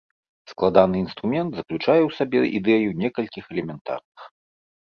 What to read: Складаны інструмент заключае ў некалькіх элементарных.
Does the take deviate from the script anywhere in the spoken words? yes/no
yes